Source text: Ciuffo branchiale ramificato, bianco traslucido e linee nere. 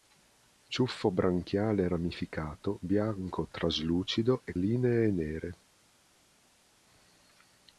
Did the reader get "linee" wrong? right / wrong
right